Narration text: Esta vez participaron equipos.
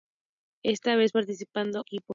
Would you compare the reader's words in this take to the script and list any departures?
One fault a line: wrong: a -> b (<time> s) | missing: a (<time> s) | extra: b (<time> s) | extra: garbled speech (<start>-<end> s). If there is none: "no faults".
no faults